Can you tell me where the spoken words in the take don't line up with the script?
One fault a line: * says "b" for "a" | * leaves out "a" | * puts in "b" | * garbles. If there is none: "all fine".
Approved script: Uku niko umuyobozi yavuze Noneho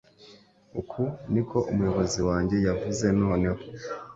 * puts in "wanjye"